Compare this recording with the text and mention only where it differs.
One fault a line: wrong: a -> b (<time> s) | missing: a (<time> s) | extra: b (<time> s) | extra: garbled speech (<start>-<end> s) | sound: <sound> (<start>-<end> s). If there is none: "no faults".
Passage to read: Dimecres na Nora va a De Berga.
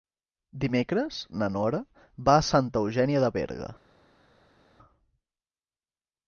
extra: Santa Eugènia (2.5 s)